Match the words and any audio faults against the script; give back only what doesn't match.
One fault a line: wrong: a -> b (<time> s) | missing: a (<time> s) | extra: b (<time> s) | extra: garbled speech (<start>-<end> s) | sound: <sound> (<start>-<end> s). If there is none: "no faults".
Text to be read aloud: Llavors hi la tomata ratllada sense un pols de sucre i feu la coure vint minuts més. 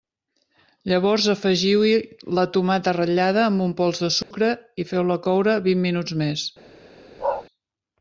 extra: afegiu (1.3 s)
wrong: sense -> amb (3.5 s)
sound: dropout (4.2-4.3 s)
sound: bark (7.2-7.5 s)